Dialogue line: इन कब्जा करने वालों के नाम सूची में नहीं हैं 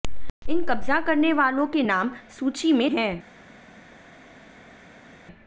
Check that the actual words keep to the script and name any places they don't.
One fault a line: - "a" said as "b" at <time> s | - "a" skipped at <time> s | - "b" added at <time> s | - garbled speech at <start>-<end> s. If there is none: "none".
- "नहीं" skipped at 2.9 s